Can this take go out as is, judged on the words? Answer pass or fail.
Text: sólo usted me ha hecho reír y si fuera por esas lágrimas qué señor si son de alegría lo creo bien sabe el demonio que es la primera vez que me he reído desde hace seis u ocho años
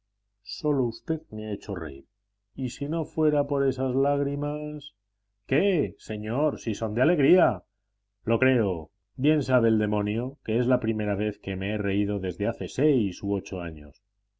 fail